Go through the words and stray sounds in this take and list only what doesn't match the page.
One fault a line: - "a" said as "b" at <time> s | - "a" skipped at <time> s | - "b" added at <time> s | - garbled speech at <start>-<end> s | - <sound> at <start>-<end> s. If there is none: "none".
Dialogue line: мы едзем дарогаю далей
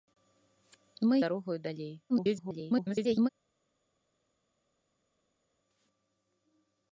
- "едзем" skipped at 1.2 s
- garbled speech at 2.1-3.3 s